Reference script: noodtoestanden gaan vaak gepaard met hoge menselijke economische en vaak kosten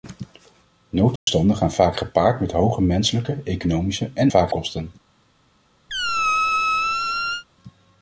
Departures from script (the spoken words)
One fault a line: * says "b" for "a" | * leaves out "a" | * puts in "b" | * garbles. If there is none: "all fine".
all fine